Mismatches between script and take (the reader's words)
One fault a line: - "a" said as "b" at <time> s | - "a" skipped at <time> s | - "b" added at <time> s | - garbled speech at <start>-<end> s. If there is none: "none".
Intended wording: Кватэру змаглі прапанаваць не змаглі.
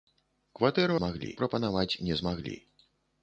none